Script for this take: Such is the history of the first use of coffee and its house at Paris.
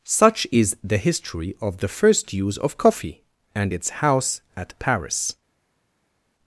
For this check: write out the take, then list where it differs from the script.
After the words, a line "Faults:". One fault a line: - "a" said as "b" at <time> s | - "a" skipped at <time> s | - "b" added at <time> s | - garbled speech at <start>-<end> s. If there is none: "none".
Such is the history of the first use of coffee and its house at Paris.
Faults:
none